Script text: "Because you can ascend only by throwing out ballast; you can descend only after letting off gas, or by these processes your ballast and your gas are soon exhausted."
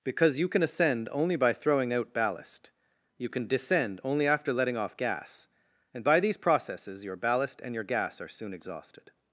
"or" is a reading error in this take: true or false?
true